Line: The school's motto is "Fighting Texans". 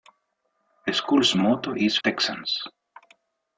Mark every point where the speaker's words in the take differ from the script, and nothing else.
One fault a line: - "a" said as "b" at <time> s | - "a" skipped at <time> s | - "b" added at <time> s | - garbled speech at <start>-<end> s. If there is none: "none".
- "Fighting" skipped at 2.0 s